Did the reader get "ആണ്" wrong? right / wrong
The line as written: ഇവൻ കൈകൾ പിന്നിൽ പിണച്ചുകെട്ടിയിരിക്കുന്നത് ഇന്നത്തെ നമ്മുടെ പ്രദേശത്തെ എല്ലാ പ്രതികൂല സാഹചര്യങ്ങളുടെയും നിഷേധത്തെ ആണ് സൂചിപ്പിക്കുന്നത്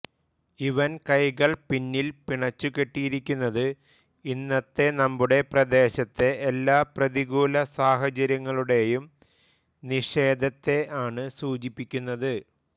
right